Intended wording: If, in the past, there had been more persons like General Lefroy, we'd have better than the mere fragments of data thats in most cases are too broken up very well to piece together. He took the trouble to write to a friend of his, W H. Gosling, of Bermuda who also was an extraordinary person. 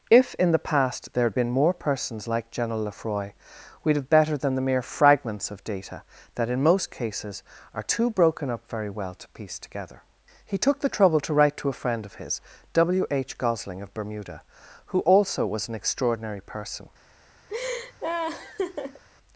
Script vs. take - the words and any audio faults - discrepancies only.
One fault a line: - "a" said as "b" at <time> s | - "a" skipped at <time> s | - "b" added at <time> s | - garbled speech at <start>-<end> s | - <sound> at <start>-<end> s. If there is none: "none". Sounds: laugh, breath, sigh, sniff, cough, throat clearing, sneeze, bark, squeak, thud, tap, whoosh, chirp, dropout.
- "thats" said as "that" at 6.4 s
- laugh at 17.5-19.0 s